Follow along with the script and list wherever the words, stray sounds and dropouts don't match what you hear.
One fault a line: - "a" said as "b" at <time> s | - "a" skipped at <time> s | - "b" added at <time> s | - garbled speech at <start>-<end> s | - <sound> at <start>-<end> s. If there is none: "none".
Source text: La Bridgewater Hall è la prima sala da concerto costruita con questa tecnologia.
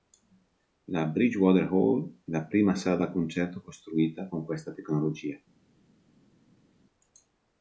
none